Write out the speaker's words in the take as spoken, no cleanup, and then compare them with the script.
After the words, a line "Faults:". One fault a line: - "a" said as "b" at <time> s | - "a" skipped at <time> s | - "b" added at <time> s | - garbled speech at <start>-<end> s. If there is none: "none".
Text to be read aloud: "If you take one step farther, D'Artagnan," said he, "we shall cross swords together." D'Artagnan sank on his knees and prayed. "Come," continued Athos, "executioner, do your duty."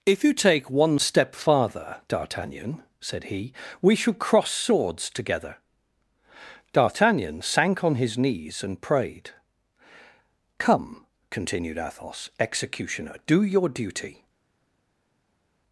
"If you take one step farther, D'Artagnan," said he, "we shall cross swords together." D'Artagnan sank on his knees and prayed. "Come," continued Athos, "executioner, do your duty."
Faults:
none